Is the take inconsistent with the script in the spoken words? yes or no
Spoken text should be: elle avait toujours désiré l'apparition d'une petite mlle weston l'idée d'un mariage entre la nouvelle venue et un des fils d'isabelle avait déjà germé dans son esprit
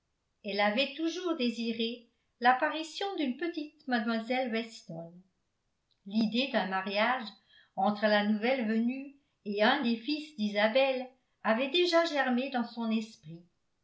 no